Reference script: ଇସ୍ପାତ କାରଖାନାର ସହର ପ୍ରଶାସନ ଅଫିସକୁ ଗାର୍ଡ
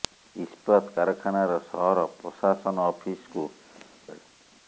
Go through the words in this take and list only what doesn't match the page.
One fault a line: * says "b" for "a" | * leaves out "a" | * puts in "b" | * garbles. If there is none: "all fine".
all fine